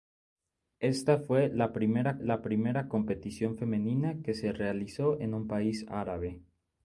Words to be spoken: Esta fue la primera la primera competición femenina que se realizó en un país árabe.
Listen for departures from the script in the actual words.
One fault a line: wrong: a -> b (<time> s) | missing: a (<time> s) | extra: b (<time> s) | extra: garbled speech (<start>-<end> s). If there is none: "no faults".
no faults